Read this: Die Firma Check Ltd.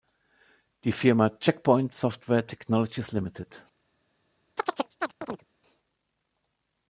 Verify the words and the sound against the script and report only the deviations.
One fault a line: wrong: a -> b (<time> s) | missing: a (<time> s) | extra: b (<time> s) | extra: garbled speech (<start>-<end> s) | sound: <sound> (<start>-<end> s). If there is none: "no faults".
extra: Point Software Technologies (1.6 s)
sound: chirp (4.6-5.5 s)